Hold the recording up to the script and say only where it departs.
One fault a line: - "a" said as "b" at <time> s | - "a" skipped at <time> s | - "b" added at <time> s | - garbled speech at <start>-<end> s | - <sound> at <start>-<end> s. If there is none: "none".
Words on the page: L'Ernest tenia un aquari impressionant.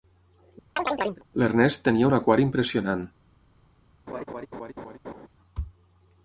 - chirp at 0.8-1.2 s
- laugh at 4.1-5.3 s